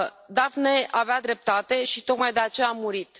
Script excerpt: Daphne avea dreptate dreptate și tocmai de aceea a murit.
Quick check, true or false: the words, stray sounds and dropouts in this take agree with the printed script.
false